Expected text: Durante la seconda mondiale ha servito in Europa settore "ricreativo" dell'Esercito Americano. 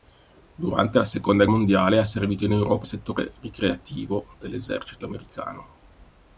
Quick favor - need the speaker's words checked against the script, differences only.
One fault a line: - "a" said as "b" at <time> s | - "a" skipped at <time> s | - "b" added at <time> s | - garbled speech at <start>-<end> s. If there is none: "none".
none